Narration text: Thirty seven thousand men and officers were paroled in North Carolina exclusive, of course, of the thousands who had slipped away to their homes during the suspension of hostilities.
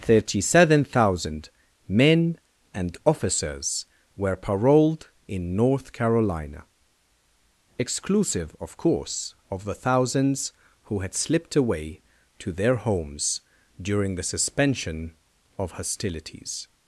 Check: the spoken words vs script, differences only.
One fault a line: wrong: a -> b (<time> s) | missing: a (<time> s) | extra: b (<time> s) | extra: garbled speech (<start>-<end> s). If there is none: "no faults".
no faults